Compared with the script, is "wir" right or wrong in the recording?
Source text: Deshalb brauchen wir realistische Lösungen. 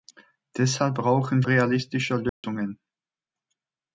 wrong